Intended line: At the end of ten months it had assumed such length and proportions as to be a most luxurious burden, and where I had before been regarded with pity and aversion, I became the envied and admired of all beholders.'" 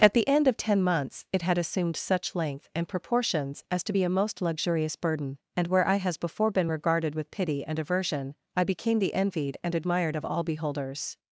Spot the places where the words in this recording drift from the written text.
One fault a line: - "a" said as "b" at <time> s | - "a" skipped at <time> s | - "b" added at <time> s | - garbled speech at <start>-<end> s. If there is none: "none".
- "had" said as "has" at 6.0 s